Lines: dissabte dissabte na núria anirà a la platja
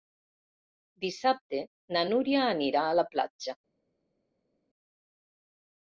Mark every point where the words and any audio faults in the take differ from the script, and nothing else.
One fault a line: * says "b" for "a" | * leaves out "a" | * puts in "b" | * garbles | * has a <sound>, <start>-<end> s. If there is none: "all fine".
* leaves out "dissabte"